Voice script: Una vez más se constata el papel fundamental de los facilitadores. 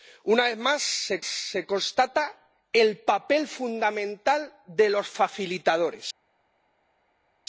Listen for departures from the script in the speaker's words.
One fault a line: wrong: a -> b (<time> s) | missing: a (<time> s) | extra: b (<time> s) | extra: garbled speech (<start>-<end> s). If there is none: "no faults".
extra: se (1.2 s)